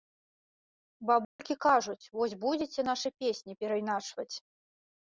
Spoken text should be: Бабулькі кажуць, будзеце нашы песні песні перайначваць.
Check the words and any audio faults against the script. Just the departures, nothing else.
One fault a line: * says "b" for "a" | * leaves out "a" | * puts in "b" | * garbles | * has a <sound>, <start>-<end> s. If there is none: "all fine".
* has a dropout, 1.2-1.4 s
* puts in "вось"
* leaves out "песні"